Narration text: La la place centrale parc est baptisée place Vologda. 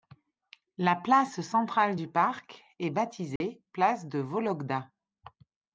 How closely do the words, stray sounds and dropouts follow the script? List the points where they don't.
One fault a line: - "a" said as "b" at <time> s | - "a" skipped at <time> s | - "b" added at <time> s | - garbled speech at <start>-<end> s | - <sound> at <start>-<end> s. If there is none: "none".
- "la" skipped at 0.9 s
- "du" added at 1.9 s
- dropout at 3.4-3.4 s
- "de" added at 4.1 s